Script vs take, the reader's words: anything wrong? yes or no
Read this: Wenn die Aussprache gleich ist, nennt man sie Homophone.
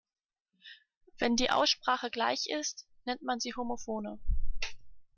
no